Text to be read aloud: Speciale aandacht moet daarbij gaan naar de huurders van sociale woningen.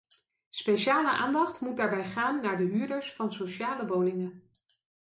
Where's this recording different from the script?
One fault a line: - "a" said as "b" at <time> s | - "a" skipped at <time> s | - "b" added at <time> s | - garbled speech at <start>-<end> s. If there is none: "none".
none